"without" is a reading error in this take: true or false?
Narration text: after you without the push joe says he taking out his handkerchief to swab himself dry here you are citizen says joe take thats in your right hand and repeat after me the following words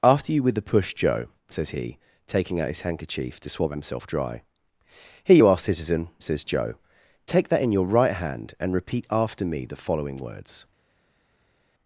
true